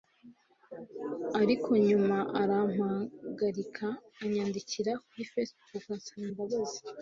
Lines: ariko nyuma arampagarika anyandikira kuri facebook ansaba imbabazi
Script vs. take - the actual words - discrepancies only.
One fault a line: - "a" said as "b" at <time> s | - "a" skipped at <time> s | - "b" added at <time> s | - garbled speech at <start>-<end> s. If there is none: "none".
none